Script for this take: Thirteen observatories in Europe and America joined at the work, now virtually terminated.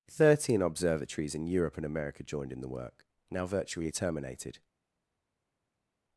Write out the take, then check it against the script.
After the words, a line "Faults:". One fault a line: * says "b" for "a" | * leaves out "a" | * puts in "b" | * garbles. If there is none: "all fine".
Thirteen observatories in Europe and America joined in the work, now virtually terminated.
Faults:
* says "in" for "at"